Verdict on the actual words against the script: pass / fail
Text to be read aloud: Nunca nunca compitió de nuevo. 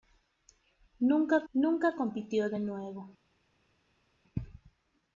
pass